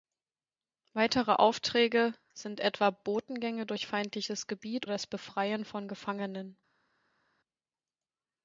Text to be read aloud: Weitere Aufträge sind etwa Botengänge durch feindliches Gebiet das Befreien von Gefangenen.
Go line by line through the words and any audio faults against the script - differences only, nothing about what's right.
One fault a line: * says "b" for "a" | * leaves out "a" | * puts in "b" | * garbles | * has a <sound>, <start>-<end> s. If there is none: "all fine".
all fine